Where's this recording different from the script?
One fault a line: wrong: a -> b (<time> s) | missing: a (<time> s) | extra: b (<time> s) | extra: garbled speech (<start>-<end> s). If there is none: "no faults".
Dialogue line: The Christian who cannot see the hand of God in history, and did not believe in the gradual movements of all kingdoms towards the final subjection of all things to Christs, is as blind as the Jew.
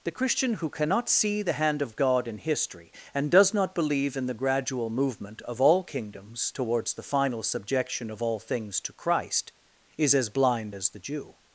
wrong: did -> does (3.3 s)
wrong: movements -> movement (4.9 s)
wrong: Christs -> Christ (8.9 s)